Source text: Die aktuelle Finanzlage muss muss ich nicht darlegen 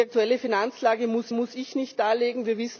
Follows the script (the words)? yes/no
yes